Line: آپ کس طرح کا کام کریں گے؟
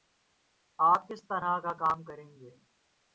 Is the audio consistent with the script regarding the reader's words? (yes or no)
yes